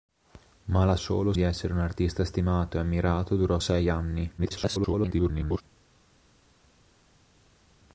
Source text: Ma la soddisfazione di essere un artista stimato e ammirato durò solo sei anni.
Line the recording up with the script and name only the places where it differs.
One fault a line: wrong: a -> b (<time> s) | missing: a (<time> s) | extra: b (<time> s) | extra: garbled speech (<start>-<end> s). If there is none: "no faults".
wrong: soddisfazione -> solo (0.9 s)
missing: solo (3.6 s)
extra: garbled speech (4.4-5.6 s)